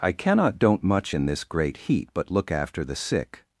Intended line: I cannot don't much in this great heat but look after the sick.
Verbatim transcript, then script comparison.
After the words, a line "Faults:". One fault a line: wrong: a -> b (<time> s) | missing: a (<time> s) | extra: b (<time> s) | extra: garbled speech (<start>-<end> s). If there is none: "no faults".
I cannot don't much in this great heat but look after the sick.
Faults:
no faults